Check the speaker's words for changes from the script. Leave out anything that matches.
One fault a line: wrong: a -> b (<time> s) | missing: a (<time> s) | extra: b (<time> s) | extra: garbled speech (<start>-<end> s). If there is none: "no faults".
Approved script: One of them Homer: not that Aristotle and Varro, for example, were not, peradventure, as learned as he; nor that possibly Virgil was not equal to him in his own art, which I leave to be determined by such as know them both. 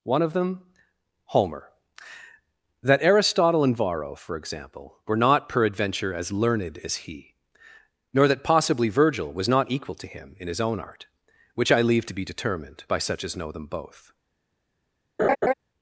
missing: not (1.7 s)